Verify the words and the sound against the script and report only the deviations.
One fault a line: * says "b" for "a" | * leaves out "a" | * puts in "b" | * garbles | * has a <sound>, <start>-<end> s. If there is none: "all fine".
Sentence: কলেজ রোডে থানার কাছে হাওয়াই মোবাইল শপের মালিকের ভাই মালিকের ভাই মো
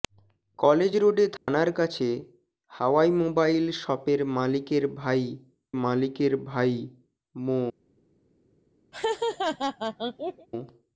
* has a dropout, 1.4-1.5 s
* has a laugh, 8.9-10.5 s